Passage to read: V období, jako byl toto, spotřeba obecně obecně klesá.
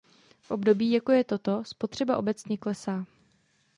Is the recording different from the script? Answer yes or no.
yes